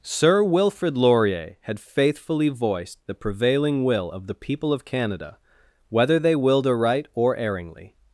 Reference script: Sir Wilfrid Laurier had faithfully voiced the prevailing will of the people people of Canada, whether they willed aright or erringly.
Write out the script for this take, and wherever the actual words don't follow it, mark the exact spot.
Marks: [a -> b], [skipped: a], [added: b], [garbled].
Sir Wilfrid Laurier had faithfully voiced the prevailing will of the people [skipped: people] of Canada, whether they willed aright or erringly.